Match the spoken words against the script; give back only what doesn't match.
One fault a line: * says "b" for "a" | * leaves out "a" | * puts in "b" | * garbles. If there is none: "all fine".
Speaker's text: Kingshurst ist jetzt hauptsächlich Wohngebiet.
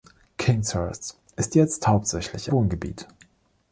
all fine